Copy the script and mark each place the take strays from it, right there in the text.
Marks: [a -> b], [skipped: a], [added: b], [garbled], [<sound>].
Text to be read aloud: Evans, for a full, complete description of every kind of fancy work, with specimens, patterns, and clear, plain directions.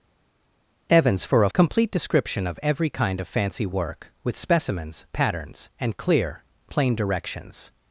Evans, for a [skipped: full,] complete description of every kind of fancy work, with specimens, patterns, and clear, plain directions.